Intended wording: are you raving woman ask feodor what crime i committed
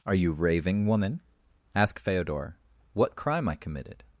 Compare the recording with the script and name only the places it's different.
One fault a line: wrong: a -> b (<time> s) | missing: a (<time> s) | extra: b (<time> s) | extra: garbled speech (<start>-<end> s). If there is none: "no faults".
no faults